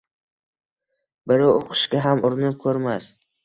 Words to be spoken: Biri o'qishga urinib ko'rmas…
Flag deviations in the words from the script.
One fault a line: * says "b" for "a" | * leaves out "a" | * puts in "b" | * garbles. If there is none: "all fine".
* puts in "ham"